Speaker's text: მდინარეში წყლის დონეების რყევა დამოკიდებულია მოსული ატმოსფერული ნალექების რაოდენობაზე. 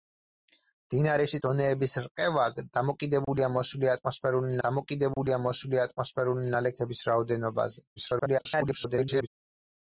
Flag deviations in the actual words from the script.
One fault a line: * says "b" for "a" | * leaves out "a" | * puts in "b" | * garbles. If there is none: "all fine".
* leaves out "წყლის"
* puts in "დამოკიდებულია მოსული ატმოსფერული"
* garbles